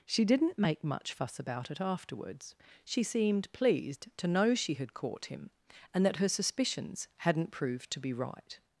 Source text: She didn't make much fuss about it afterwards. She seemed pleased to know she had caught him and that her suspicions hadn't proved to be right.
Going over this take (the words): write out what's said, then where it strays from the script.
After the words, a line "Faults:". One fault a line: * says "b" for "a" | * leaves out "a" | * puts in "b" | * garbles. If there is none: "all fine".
She didn't make much fuss about it afterwards. She seemed pleased to know she had caught him and that her suspicions hadn't proved to be right.
Faults:
all fine